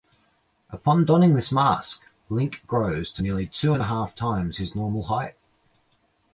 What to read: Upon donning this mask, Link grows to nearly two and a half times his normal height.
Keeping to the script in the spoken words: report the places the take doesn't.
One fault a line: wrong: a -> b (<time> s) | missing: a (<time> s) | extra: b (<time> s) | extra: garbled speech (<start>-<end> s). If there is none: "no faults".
no faults